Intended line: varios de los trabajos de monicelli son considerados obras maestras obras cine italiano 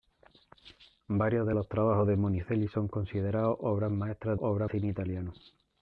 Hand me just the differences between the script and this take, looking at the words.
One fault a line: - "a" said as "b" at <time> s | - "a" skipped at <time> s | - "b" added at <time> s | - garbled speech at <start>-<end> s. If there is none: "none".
none